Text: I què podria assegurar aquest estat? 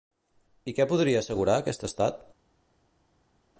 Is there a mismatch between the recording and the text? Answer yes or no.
no